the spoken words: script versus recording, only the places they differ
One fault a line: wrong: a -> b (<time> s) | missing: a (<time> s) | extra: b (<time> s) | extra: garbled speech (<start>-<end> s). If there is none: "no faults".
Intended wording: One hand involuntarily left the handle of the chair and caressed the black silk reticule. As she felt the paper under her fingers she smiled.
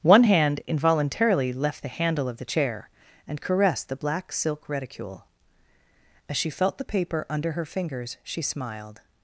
no faults